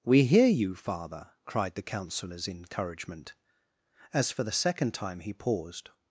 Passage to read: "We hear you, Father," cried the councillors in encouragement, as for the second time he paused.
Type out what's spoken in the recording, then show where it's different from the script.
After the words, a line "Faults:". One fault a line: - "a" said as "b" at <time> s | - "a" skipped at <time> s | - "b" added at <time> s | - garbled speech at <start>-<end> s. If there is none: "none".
"We hear you, Father," cried the councillors in encouragement, as for the second time he paused.
Faults:
none